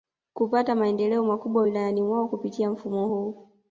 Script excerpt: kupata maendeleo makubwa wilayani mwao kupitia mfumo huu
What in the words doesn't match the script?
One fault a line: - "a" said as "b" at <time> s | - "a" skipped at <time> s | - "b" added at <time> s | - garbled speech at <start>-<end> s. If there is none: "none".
none